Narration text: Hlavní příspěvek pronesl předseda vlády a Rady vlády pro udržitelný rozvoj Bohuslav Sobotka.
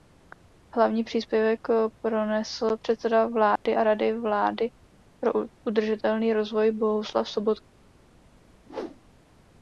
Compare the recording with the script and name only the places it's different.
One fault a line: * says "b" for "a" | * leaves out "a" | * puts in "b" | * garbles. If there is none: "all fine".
all fine